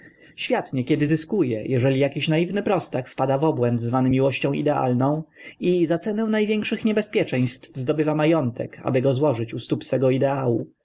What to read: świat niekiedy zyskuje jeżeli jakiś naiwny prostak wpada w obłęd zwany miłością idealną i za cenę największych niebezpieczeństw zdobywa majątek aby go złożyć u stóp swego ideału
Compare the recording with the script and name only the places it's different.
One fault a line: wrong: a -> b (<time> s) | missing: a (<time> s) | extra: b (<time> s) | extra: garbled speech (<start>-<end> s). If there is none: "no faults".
no faults